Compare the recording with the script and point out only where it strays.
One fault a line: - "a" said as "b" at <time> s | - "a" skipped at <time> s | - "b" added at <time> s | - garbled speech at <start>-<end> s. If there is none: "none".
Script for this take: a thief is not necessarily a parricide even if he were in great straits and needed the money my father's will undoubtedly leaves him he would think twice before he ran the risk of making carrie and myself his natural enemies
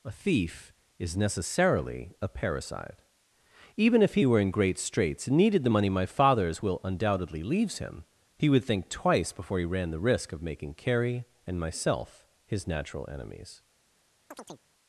- "not" skipped at 1.1 s